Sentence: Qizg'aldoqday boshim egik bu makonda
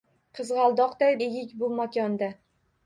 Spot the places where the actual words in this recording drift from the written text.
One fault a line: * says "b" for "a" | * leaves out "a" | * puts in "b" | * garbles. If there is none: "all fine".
* leaves out "boshim"